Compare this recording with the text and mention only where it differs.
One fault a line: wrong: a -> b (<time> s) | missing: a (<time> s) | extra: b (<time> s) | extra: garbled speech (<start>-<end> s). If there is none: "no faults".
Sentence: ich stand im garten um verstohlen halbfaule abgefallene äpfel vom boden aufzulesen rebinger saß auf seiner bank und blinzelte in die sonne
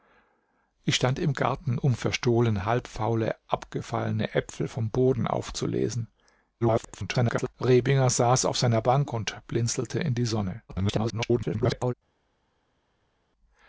extra: garbled speech (6.6-7.5 s)
extra: garbled speech (10.7-11.9 s)